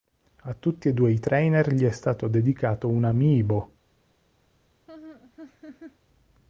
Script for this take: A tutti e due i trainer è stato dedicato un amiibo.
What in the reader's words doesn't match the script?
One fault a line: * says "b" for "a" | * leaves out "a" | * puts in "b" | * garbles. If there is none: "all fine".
* puts in "gli"